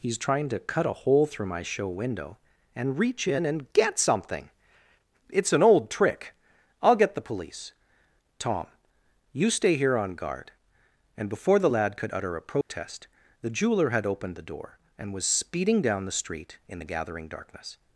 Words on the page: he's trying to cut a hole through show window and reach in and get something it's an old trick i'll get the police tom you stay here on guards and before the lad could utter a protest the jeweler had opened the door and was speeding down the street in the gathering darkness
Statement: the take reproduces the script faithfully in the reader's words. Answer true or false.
false